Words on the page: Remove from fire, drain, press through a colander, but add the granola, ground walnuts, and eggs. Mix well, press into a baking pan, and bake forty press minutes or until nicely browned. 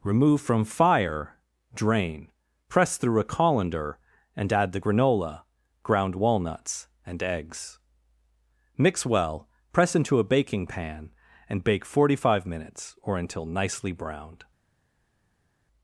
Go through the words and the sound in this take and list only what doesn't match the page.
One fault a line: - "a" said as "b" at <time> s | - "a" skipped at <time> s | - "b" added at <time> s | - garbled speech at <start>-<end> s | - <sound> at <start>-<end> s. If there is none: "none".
- "but" said as "and" at 4.3 s
- "press" said as "five" at 12.1 s